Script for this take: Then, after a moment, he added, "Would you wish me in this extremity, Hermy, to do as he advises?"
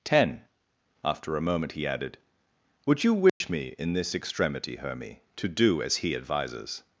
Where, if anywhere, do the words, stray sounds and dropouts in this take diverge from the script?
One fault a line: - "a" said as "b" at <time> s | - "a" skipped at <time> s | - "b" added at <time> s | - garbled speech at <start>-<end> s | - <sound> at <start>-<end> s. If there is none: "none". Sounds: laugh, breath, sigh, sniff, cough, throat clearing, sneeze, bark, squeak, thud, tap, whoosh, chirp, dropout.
- "Then" said as "Ten" at 0.0 s
- dropout at 3.3-3.4 s